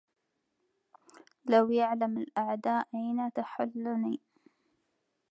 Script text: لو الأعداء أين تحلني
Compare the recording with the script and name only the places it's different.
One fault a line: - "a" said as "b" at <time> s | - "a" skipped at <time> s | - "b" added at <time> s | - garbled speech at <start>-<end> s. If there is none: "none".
- "يعلم" added at 1.7 s